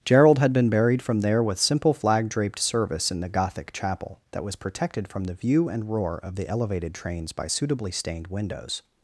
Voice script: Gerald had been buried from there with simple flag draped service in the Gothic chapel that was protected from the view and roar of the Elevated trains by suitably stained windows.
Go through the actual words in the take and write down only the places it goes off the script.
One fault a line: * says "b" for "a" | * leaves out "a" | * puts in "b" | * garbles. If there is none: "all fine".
all fine